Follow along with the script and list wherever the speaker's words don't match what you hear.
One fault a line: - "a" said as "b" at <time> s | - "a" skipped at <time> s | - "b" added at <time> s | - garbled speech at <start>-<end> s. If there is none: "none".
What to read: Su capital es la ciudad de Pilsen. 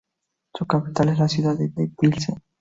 - "de" added at 1.7 s